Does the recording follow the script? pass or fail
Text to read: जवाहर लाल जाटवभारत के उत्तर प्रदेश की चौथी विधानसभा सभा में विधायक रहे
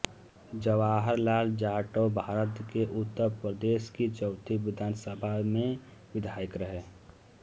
pass